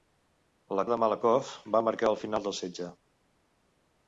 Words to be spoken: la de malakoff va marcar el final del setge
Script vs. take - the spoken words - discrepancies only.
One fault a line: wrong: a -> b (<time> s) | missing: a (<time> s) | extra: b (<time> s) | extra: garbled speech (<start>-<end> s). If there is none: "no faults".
no faults